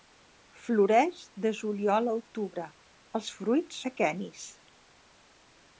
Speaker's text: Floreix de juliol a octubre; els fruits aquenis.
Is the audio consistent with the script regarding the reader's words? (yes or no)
yes